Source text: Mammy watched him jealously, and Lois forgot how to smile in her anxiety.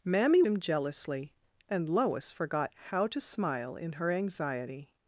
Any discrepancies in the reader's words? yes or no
yes